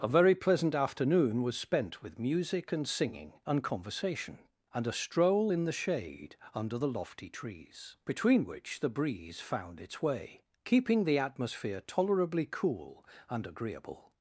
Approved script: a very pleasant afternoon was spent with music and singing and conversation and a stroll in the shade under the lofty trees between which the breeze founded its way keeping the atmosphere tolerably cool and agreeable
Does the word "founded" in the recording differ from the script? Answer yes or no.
yes